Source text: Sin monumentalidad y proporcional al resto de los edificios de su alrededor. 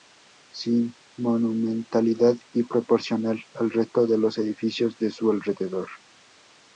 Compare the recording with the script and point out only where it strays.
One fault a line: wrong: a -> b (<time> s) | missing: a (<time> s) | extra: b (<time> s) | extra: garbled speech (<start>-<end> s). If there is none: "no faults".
no faults